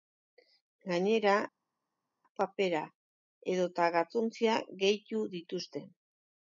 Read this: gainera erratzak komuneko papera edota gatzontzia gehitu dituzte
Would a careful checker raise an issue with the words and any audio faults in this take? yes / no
yes